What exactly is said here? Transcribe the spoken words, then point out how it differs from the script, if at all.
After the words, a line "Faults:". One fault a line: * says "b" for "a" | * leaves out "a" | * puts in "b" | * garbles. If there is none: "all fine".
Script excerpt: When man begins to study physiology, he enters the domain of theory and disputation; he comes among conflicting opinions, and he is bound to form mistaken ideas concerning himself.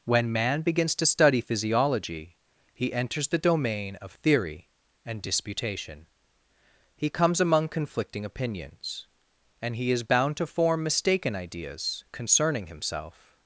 When man begins to study physiology, he enters the domain of theory and disputation; he comes among conflicting opinions, and he is bound to form mistaken ideas concerning himself.
Faults:
all fine